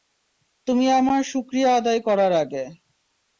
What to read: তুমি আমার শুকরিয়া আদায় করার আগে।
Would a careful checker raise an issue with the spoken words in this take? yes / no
no